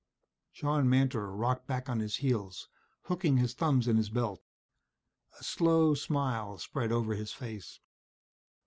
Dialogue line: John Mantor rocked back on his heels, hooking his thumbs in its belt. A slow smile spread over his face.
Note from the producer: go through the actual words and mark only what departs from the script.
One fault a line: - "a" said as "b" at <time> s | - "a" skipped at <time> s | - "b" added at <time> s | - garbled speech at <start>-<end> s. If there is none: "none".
- "its" said as "his" at 4.0 s